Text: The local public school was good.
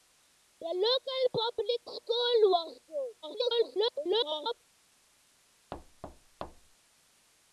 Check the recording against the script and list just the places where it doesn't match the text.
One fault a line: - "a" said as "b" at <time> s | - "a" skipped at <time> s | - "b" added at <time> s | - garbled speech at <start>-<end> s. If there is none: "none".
- garbled speech at 3.2-4.6 s